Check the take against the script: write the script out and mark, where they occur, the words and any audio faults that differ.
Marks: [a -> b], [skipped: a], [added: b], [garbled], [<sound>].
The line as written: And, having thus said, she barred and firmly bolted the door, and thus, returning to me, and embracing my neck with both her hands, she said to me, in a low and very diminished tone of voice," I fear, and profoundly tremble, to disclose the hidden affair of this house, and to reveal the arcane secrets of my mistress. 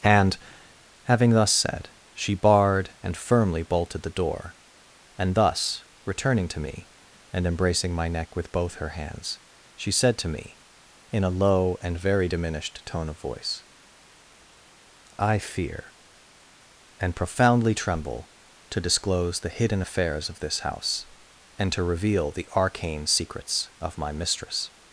And, having thus said, she barred and firmly bolted the door, and thus, returning to me, and embracing my neck with both her hands, she said to me, in a low and very diminished tone of voice," I fear, and profoundly tremble, to disclose the hidden [affair -> affairs] of this house, and to reveal the arcane secrets of my mistress.